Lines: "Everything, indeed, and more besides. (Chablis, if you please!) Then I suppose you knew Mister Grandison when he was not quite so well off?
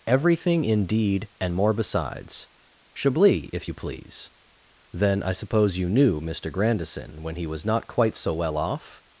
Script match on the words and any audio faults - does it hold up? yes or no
yes